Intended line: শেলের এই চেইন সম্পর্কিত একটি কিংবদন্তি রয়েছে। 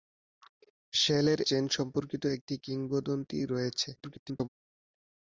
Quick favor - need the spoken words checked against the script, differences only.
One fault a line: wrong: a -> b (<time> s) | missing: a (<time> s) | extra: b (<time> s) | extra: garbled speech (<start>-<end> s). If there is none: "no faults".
missing: এই (1.4 s)
extra: garbled speech (4.0-4.5 s)